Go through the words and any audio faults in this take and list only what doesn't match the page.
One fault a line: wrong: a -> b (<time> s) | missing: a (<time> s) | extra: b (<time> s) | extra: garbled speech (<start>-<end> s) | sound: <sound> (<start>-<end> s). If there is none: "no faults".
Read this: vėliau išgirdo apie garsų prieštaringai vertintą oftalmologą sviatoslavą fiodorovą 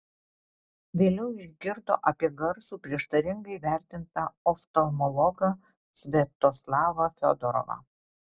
no faults